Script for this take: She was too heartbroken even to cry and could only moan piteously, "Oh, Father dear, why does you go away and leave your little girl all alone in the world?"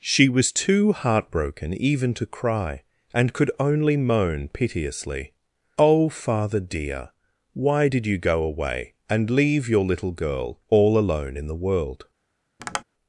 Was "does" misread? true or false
true